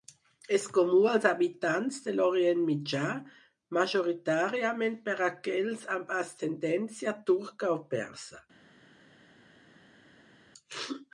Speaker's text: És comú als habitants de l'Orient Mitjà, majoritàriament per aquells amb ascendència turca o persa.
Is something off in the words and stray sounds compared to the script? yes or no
no